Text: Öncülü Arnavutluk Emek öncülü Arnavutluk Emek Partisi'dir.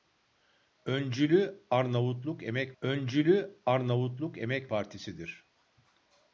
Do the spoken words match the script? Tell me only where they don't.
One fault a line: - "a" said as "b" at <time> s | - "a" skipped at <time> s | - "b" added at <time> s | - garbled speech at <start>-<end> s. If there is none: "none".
none